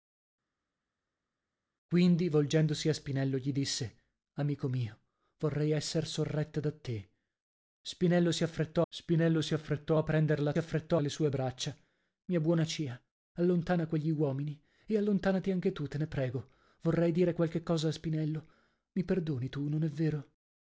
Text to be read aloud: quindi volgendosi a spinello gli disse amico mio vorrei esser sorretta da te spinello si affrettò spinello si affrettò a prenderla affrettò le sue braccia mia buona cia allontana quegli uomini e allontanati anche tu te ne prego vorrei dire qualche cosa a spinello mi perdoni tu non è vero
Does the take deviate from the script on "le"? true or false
false